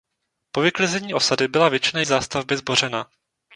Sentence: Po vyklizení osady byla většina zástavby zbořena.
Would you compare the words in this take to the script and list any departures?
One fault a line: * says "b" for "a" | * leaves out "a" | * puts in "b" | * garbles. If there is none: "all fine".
all fine